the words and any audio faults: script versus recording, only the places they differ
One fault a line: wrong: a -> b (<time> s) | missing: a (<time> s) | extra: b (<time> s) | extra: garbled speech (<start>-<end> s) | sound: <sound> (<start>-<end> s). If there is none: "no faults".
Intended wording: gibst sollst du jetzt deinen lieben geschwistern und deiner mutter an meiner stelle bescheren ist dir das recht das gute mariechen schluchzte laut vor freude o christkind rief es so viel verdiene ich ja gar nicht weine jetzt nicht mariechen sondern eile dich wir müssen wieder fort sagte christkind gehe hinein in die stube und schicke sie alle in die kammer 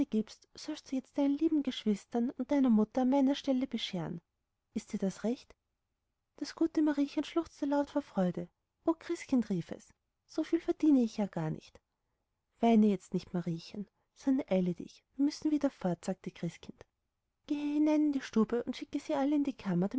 no faults